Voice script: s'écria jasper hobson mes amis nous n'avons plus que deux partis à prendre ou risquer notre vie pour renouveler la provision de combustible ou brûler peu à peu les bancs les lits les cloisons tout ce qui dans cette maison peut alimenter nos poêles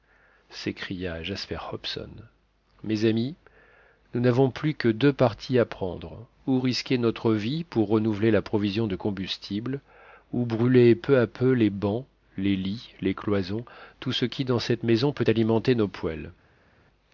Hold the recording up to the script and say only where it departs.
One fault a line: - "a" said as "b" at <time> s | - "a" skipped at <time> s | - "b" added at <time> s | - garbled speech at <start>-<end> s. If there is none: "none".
none